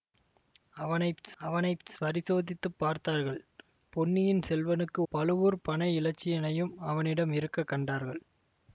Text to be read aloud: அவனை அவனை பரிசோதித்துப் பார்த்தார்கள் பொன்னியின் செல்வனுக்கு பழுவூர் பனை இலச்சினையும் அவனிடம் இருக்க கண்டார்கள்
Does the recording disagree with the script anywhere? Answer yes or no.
no